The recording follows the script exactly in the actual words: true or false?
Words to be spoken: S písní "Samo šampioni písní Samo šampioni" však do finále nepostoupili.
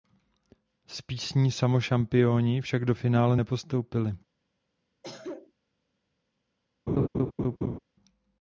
false